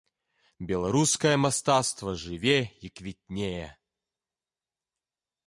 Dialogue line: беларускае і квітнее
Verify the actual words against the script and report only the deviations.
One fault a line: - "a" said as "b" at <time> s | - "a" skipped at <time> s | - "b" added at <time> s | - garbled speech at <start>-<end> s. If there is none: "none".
- "мастацтва жыве" added at 1.4 s